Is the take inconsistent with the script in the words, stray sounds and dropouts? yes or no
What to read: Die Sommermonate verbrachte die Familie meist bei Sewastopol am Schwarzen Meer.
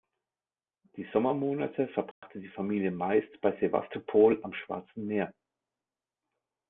yes